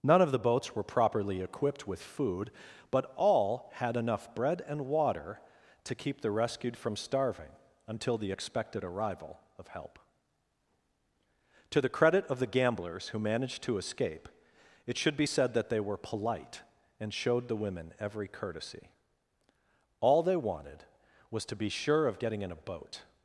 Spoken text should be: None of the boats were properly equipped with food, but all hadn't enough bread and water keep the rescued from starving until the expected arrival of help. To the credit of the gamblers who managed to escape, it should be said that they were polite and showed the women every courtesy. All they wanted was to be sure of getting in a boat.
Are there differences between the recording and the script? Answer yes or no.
yes